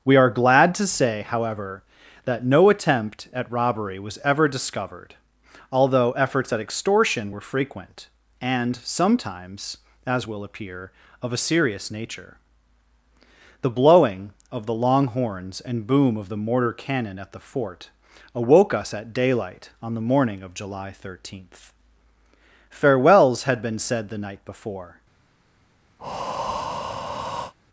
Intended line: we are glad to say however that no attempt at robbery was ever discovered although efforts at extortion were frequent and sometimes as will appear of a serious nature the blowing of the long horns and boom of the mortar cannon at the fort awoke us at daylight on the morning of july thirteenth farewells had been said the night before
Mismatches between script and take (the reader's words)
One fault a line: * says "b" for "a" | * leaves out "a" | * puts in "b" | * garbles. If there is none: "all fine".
all fine